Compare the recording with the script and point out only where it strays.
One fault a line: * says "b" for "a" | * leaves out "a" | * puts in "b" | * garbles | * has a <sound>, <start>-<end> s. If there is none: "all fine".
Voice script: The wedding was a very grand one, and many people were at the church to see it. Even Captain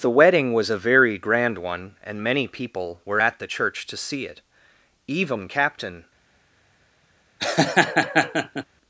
* has a laugh, 7.4-8.6 s